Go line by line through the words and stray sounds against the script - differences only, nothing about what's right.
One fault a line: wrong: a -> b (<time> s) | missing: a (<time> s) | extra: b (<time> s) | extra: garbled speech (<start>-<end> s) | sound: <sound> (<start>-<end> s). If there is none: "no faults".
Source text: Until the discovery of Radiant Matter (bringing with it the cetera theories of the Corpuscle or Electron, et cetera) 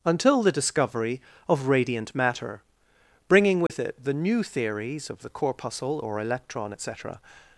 sound: dropout (3.7-3.7 s)
wrong: cetera -> new (4.2 s)